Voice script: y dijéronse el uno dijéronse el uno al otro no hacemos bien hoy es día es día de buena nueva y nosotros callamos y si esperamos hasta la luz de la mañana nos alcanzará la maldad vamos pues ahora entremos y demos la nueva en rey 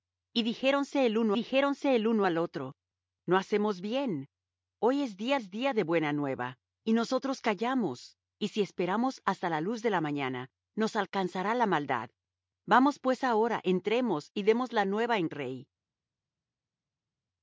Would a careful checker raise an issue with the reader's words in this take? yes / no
no